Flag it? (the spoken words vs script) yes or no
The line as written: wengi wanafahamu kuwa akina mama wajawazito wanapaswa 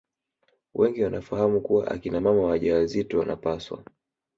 no